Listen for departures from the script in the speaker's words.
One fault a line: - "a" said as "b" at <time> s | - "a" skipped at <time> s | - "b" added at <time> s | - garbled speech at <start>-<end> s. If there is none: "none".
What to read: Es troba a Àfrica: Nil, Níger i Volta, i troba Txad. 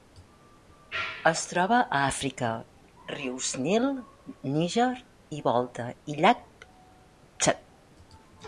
- "rius" added at 3.1 s
- "troba" said as "llac" at 6.2 s